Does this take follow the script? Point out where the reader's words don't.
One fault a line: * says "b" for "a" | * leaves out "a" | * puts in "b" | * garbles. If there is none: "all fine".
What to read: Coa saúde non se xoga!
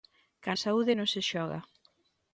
all fine